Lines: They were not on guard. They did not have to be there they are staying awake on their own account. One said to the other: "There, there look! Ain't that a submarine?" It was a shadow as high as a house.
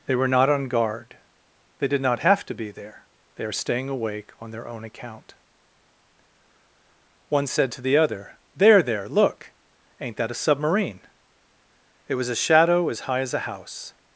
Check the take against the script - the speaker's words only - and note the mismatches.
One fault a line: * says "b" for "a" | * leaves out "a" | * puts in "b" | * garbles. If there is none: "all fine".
all fine